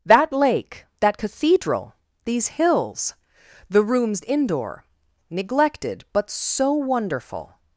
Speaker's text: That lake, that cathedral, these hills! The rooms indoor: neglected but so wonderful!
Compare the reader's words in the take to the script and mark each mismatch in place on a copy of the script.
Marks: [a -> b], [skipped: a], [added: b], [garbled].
That lake, that cathedral, these hills! The rooms indoor: neglected but so wonderful!